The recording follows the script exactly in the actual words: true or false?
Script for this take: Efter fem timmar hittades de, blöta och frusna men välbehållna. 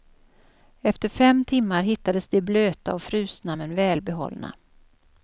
true